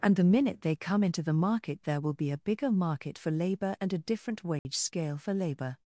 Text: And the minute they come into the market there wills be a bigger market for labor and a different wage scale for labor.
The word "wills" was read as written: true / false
false